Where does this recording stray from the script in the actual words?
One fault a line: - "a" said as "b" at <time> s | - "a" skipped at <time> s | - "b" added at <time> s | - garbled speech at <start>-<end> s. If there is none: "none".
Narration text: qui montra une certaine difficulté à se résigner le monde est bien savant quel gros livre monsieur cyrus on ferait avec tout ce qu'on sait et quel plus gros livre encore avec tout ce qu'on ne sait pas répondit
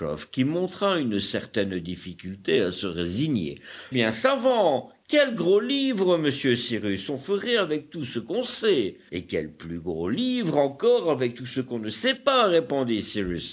- "le monde est" skipped at 3.6 s